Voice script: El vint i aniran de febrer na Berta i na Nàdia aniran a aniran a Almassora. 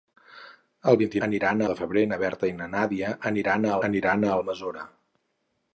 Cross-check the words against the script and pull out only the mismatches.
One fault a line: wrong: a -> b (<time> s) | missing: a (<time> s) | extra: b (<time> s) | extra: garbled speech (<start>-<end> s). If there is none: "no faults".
no faults